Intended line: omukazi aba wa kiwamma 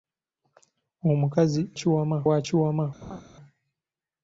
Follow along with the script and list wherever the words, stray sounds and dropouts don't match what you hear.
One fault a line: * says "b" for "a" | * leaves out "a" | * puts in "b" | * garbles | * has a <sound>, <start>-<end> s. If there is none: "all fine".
* says "kiwamma" for "aba"
* has a laugh, 3.0-3.2 s